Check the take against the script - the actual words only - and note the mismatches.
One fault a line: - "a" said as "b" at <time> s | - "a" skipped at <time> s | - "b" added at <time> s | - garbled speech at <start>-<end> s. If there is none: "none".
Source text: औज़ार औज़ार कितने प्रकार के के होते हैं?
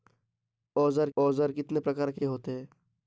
none